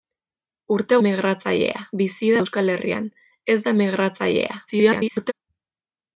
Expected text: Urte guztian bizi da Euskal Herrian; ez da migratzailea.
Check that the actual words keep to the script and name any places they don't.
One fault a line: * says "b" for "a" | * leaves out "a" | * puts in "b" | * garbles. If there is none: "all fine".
* says "migratzailea" for "guztian"
* garbles